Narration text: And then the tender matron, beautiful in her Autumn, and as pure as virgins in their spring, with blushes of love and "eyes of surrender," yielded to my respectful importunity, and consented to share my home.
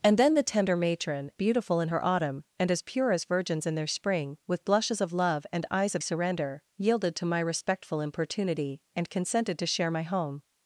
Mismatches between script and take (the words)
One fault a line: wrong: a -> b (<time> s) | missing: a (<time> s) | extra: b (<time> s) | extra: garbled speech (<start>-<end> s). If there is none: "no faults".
no faults